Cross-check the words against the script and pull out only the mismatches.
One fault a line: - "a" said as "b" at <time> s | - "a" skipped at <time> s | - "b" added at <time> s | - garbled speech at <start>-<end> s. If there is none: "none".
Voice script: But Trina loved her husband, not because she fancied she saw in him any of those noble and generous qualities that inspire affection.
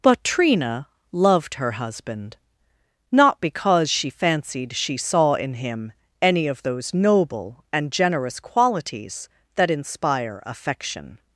none